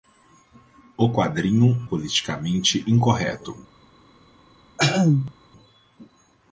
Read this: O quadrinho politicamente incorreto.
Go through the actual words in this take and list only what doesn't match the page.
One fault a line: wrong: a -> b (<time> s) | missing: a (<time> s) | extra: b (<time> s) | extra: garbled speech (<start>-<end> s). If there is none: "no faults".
no faults